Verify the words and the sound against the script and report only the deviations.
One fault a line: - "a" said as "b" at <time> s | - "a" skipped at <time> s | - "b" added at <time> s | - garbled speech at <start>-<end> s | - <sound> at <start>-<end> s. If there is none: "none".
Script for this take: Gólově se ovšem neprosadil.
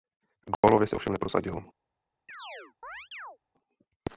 - dropout at 0.5-0.6 s
- chirp at 2.3-3.4 s